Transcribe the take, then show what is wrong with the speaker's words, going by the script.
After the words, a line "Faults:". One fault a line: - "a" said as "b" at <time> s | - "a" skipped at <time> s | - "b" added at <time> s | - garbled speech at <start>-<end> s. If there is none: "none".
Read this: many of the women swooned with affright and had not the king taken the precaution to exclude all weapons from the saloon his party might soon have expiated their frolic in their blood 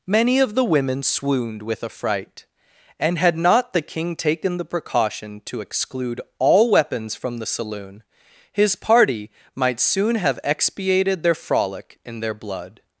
many of the women swooned with affright and had not the king taken the precaution to exclude all weapons from the saloon his party might soon have expiated their frolic in their blood
Faults:
none